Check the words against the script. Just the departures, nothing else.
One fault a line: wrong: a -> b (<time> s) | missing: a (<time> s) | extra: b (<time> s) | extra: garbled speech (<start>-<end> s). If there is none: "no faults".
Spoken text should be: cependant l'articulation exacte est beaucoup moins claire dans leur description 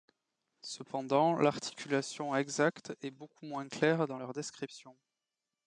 no faults